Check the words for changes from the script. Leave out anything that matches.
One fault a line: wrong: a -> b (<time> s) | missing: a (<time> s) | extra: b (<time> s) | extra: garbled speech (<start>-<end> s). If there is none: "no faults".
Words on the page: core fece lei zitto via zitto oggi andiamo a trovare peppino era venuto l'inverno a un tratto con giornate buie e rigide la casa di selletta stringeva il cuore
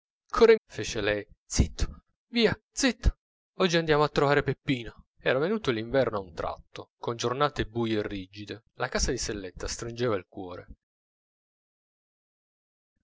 no faults